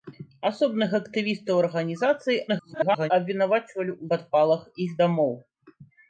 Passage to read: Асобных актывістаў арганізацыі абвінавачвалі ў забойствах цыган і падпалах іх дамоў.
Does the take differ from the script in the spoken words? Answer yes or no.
yes